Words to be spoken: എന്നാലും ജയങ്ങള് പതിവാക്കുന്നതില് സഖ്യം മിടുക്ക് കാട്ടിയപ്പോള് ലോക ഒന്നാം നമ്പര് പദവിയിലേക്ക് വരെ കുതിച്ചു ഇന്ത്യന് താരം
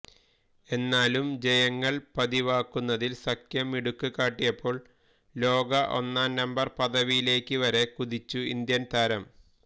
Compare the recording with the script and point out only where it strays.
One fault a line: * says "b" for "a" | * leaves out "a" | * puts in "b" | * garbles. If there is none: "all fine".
all fine